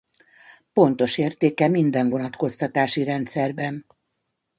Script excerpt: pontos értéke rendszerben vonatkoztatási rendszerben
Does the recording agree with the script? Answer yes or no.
no